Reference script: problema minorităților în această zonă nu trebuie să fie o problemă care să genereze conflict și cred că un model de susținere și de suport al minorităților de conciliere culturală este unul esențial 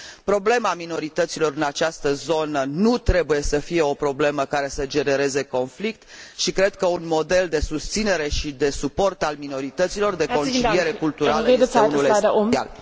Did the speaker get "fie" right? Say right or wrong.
right